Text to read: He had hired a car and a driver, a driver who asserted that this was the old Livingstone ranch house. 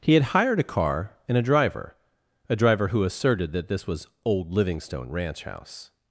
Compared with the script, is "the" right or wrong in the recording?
wrong